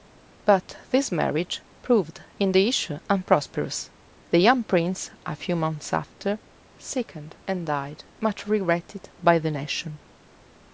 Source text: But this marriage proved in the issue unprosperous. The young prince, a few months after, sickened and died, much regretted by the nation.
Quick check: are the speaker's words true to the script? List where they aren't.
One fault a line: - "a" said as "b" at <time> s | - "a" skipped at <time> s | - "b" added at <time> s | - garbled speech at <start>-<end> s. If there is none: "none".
none